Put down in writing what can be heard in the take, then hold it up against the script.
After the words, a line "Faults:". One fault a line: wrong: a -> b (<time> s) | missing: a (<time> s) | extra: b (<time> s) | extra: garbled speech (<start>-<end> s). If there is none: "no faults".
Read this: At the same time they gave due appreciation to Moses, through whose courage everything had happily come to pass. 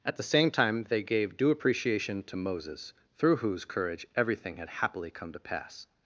At the same time they gave due appreciation to Moses, through whose courage everything had happily come to pass.
Faults:
no faults